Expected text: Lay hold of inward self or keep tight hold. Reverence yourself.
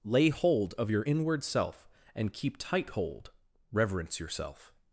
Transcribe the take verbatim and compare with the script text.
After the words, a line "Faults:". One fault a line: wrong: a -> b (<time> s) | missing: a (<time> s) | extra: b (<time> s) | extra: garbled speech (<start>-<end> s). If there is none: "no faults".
Lay hold of your inward self and keep tight hold. Reverence yourself.
Faults:
extra: your (0.9 s)
wrong: or -> and (2.1 s)